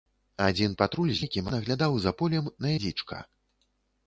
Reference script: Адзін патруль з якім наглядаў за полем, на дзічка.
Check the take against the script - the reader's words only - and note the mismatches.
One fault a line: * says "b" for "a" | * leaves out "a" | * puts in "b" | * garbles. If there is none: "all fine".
all fine